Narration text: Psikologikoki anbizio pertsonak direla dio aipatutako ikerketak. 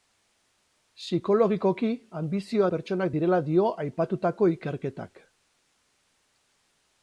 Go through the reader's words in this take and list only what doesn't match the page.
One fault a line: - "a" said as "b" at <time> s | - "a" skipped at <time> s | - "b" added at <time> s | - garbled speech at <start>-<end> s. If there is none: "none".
none